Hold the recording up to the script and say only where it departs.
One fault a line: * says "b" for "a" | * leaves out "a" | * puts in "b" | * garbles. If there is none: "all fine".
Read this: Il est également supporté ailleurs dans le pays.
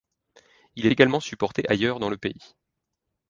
* leaves out "est"